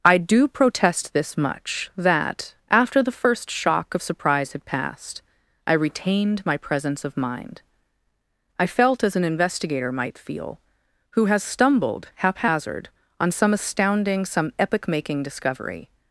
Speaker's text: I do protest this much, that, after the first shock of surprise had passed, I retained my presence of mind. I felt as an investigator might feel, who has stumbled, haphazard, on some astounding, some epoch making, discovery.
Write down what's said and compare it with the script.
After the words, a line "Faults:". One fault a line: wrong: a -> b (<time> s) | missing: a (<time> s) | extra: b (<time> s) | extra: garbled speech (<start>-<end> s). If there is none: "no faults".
I do protest this much, that, after the first shock of surprise had passed, I retained my presence of mind. I felt as an investigator might feel, who has stumbled, haphazard, on some astounding, some epoch making, discovery.
Faults:
no faults